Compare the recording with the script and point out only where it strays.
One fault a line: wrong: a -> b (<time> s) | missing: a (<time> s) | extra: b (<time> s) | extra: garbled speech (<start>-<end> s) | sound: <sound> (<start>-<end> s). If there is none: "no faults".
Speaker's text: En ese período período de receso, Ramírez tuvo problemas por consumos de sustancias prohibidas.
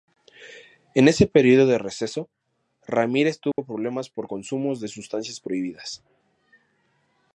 missing: período (1.7 s)
sound: dropout (3.5-3.6 s)